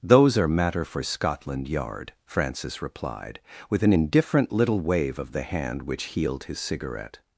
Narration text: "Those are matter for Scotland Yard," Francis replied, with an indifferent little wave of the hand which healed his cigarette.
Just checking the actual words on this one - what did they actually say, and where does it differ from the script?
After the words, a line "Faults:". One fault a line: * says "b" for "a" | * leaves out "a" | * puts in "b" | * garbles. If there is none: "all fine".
"Those are matter for Scotland Yard," Francis replied, with an indifferent little wave of the hand which healed his cigarette.
Faults:
all fine